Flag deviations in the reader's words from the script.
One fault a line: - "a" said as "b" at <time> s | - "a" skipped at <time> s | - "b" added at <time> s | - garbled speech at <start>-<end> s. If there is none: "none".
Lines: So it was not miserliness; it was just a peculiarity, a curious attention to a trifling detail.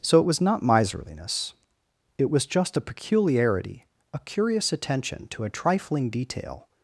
none